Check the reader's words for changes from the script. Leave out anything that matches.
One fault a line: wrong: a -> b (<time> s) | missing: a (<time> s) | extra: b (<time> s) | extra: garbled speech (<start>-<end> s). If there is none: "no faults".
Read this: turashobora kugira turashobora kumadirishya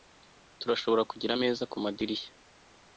wrong: turashobora -> ameza (1.3 s)